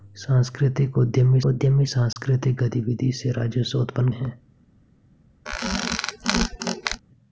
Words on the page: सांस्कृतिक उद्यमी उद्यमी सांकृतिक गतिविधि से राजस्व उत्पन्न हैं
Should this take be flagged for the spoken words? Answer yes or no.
no